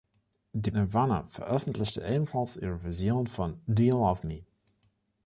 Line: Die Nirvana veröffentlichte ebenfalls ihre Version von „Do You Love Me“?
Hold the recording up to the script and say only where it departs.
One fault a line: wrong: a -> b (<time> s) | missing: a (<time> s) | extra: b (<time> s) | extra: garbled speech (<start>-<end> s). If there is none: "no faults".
no faults